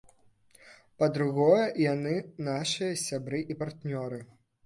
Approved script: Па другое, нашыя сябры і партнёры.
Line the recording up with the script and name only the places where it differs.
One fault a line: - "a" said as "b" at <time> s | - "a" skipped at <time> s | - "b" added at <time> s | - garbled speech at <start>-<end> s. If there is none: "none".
- "яны" added at 1.9 s